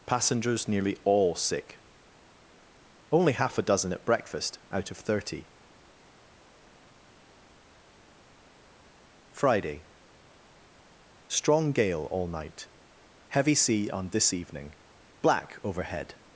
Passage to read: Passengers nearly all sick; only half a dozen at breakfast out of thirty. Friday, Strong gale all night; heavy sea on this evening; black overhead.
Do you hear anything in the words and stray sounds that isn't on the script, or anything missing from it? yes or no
no